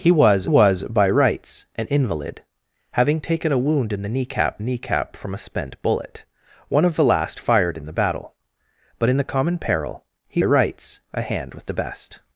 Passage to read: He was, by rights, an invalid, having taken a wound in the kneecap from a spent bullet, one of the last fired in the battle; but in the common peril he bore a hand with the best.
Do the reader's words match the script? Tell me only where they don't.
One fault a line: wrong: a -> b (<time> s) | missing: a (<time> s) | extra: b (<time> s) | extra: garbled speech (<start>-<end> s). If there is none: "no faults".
extra: was (0.4 s)
extra: kneecap (4.6 s)
wrong: bore -> rights (10.4 s)